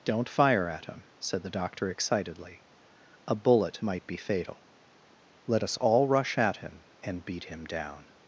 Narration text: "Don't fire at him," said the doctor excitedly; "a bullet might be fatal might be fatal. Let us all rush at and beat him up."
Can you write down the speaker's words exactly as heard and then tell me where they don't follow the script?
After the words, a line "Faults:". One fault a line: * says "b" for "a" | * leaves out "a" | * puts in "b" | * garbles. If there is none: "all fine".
"Don't fire at him," said the doctor excitedly; "a bullet might be fatal. Let us all rush at him and beat him down."
Faults:
* leaves out "might be fatal"
* puts in "him"
* says "down" for "up"